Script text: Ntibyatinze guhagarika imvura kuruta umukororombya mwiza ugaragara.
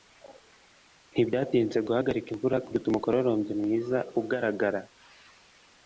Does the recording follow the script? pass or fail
pass